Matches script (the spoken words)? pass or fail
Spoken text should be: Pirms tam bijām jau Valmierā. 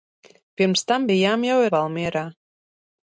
pass